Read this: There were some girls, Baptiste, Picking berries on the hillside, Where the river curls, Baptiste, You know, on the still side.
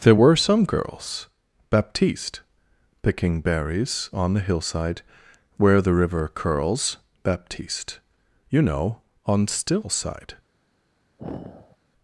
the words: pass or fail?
fail